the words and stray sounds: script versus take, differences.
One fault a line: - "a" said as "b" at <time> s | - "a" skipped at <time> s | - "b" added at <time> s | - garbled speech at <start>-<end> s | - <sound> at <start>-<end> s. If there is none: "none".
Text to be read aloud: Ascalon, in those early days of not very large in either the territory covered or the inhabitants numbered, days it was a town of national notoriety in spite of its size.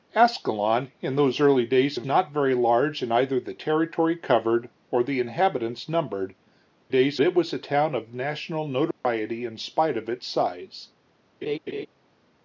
- dropout at 8.9-9.0 s
- laugh at 11.4-11.9 s